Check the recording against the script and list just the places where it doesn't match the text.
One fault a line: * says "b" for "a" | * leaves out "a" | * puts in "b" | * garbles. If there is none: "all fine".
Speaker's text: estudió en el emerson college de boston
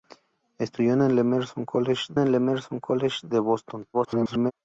* puts in "el emerson college"
* garbles